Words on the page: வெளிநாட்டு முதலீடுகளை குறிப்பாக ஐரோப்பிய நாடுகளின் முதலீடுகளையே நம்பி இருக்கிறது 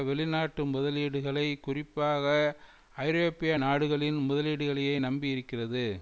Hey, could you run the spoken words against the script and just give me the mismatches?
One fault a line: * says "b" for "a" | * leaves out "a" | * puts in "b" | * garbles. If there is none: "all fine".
all fine